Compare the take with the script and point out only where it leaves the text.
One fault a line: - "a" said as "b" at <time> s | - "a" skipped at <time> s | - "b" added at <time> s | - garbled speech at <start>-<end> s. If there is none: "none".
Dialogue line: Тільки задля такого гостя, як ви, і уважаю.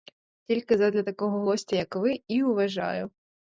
none